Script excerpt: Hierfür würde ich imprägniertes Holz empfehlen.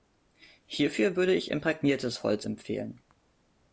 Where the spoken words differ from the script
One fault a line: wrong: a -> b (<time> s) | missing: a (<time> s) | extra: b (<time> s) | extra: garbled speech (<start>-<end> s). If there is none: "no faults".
no faults